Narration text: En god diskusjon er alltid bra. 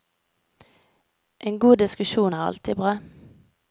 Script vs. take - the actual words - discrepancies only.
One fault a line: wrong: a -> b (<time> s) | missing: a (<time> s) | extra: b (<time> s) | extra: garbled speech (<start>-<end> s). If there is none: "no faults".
no faults